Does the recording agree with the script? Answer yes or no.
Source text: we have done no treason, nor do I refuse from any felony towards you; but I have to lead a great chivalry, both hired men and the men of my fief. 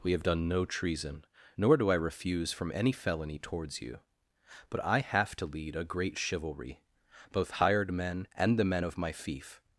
yes